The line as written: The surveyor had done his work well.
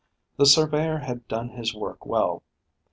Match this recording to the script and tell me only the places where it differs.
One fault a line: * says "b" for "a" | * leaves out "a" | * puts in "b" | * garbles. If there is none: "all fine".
all fine